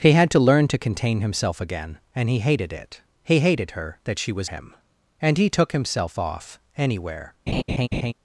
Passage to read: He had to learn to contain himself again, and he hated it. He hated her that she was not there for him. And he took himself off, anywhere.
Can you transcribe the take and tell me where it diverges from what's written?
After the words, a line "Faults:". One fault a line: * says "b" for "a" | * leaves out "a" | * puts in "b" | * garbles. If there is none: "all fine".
He had to learn to contain himself again, and he hated it. He hated her that she was him. And he took himself off, anywhere.
Faults:
* leaves out "not there for"